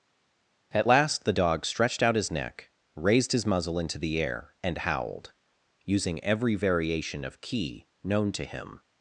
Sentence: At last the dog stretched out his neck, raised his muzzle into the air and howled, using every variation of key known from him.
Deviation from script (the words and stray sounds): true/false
true